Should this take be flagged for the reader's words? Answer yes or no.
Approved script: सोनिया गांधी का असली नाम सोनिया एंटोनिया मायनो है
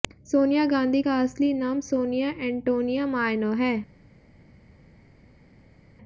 no